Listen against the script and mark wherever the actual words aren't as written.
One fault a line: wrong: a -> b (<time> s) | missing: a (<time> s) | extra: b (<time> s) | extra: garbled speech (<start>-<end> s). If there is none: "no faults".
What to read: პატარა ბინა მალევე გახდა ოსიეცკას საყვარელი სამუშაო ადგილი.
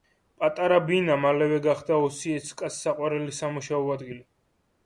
no faults